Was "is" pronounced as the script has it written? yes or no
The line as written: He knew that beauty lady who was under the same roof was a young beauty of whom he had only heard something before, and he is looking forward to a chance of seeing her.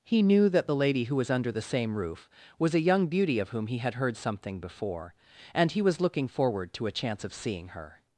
no